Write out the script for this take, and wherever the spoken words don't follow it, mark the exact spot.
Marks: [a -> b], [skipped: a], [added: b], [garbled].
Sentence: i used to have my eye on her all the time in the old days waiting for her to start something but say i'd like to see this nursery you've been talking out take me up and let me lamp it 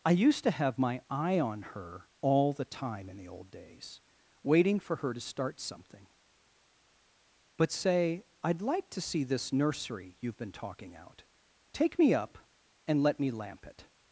i used to have my eye on her all the time in the old days waiting for her to start something but say i'd like to see this nursery you've been talking out take me up and let me lamp it